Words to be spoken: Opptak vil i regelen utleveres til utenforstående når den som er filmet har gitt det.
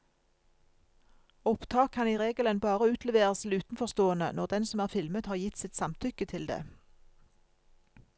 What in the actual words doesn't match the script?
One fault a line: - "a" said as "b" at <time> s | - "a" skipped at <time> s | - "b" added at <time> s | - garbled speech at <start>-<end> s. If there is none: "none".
- "vil" said as "kan" at 1.9 s
- "bare" added at 2.6 s
- "sitt samtykke til" added at 5.6 s